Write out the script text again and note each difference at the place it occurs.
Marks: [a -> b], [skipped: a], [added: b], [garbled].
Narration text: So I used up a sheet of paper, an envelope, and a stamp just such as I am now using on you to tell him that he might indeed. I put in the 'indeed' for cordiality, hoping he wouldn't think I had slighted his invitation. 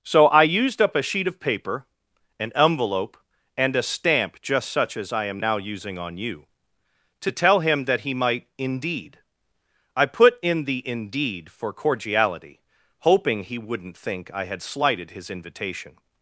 So I used up a sheet of paper, an envelope, and a stamp just such as I am now using on you to tell him that he might indeed. I put in the 'indeed' for cordiality, hoping he wouldn't think I had slighted his invitation.